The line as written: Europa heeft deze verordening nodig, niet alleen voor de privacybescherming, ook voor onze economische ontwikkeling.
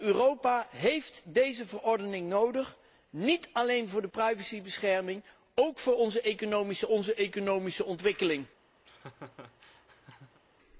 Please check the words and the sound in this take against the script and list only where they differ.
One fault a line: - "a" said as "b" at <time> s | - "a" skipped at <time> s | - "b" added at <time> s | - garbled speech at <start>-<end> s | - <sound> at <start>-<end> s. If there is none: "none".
- "onze economische" added at 6.9 s
- laugh at 8.8-10.4 s